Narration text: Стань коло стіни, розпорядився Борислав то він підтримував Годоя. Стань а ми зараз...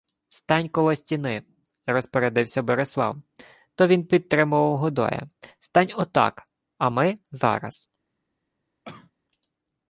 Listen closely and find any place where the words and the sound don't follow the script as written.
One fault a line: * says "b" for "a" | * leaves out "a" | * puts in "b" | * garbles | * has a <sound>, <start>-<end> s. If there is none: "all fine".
* puts in "отак"
* has a cough, 8.8-9.1 s